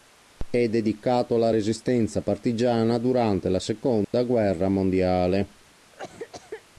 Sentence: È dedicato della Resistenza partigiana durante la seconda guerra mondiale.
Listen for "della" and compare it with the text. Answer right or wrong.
wrong